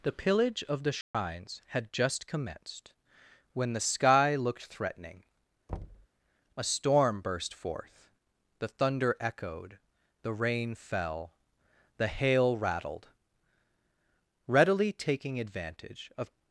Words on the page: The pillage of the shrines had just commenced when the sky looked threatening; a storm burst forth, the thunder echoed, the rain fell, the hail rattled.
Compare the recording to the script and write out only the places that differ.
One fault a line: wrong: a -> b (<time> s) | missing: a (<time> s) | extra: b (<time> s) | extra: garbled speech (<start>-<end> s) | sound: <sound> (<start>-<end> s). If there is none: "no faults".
sound: dropout (1.0-1.1 s)
sound: thud (5.7-6.1 s)
extra: Readily taking advantage of (14.5 s)